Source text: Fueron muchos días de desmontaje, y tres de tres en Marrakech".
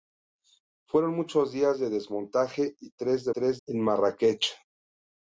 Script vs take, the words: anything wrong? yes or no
no